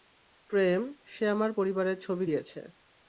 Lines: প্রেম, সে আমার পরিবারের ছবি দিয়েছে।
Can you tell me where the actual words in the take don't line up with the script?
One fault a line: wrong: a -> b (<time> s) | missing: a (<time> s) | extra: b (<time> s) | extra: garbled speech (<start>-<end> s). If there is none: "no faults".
no faults